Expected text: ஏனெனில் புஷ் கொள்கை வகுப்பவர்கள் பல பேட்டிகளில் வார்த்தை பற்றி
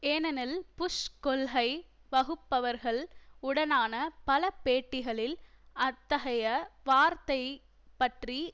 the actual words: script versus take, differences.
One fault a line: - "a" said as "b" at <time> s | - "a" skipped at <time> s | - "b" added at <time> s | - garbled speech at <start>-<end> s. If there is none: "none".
- "உடனான" added at 3.4 s
- "அத்தகைய" added at 5.8 s